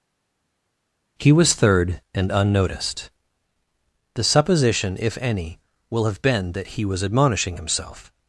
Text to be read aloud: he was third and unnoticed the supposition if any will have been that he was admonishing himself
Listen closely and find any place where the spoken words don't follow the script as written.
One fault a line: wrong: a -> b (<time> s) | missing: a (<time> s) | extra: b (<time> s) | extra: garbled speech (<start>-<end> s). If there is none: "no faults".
no faults